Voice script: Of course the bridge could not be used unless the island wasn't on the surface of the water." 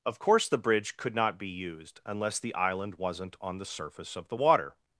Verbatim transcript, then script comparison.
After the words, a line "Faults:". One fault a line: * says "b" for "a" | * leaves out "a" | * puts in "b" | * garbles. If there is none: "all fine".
Of course the bridge could not be used unless the island wasn't on the surface of the water."
Faults:
all fine